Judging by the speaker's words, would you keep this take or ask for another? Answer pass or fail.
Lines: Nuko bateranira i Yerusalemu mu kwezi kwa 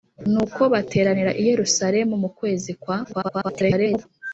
fail